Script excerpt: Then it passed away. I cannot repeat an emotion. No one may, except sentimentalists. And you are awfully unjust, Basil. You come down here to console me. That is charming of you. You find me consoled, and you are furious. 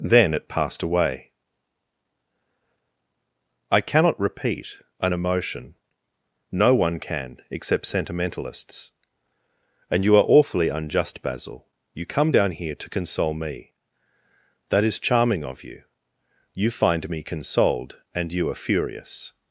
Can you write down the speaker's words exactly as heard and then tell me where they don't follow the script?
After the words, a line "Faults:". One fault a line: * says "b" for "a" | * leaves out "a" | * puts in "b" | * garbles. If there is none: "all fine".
Then it passed away. I cannot repeat an emotion. No one can, except sentimentalists. And you are awfully unjust, Basil. You come down here to console me. That is charming of you. You find me consoled, and you are furious.
Faults:
* says "can" for "may"